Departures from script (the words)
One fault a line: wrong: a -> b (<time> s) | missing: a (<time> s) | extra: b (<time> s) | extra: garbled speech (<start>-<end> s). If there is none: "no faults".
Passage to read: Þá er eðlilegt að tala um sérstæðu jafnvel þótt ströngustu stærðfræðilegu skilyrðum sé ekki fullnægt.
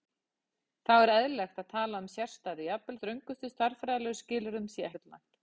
missing: þótt (3.0 s)
missing: ekki (4.9 s)